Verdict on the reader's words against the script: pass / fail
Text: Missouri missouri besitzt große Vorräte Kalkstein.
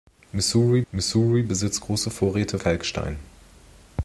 pass